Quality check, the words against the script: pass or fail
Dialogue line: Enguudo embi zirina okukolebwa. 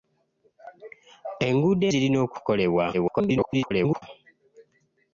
fail